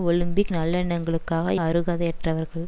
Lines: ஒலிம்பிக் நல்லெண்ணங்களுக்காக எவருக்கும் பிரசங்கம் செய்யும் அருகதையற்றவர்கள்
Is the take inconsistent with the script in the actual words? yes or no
yes